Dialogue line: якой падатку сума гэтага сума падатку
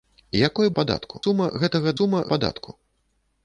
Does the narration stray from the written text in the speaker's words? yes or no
no